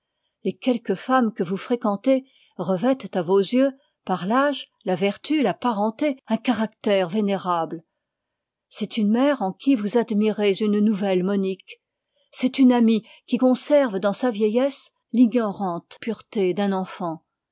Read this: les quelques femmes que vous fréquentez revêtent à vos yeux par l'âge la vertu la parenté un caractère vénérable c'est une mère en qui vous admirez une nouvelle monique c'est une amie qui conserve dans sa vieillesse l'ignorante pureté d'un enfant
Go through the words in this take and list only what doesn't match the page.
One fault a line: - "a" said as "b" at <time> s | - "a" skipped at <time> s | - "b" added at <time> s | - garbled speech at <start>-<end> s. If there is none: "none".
none